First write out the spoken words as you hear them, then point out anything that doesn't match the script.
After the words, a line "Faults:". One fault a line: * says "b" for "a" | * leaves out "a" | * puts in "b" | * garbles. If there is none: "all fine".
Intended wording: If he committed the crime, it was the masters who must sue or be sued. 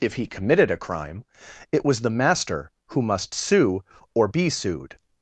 If he committed a crime, it was the master who must sue or be sued.
Faults:
* says "a" for "the"
* says "master" for "masters"